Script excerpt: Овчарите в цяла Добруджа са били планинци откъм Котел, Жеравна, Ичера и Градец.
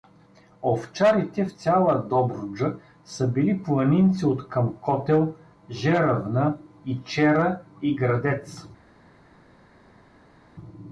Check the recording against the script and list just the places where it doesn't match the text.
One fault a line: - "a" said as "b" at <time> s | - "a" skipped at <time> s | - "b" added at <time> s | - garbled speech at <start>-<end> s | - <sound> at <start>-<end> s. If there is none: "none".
none